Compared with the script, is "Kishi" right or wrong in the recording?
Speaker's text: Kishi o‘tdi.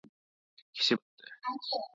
right